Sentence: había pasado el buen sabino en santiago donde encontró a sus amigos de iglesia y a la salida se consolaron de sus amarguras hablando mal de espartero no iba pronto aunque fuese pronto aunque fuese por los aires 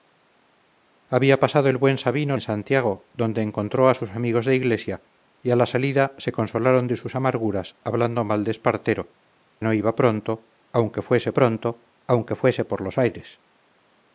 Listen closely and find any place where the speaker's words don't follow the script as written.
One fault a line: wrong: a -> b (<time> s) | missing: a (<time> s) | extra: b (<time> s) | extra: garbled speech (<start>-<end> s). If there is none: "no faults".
no faults